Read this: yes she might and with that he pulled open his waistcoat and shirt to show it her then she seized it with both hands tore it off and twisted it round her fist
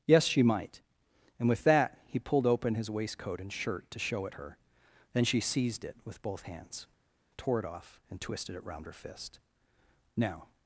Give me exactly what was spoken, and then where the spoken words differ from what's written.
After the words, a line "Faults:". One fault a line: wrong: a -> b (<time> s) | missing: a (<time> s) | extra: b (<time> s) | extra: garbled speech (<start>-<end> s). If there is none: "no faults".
yes she might and with that he pulled open his waistcoat and shirt to show it her then she seized it with both hands tore it off and twisted it round her fist now
Faults:
extra: now (10.1 s)